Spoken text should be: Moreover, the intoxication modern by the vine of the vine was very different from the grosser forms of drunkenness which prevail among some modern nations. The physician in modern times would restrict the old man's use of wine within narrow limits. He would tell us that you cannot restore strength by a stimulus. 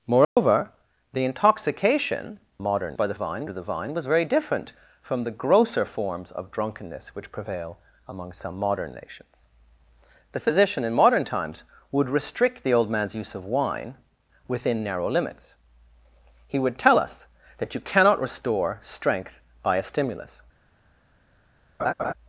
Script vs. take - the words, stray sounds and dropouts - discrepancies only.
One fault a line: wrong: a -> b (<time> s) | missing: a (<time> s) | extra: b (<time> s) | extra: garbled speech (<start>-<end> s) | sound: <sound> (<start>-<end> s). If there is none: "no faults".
sound: dropout (0.2-0.4 s)
sound: laugh (21.8-22.1 s)